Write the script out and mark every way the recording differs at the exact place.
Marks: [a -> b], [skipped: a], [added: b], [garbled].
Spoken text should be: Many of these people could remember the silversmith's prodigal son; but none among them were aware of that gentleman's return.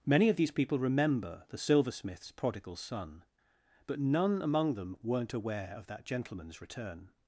Many of these people [skipped: could] remember the silversmith's prodigal son; but none among them [were -> weren't] aware of that gentleman's return.